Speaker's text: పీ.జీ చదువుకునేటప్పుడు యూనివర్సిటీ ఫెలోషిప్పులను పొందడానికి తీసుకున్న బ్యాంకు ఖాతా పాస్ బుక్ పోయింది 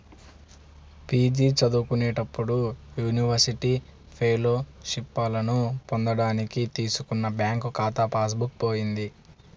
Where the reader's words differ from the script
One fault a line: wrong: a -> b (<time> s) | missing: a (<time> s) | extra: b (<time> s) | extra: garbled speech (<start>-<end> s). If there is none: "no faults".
no faults